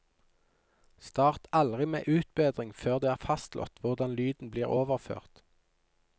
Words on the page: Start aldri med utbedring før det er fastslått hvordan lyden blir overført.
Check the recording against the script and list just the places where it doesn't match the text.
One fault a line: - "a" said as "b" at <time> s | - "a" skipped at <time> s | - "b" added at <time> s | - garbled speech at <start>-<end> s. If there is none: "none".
none